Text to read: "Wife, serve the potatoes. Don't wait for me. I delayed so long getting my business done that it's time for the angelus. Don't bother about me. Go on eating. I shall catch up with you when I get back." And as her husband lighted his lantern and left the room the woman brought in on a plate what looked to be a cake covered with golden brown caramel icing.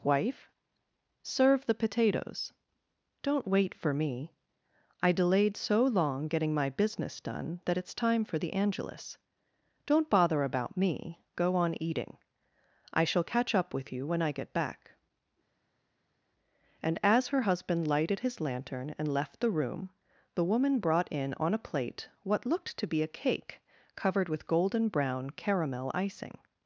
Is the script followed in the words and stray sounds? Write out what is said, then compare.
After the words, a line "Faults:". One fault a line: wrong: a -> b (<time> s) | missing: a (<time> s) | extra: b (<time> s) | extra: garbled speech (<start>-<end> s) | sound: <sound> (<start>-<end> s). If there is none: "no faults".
"Wife, serve the potatoes. Don't wait for me. I delayed so long getting my business done that it's time for the angelus. Don't bother about me. Go on eating. I shall catch up with you when I get back." And as her husband lighted his lantern and left the room the woman brought in on a plate what looked to be a cake covered with golden brown caramel icing.
Faults:
no faults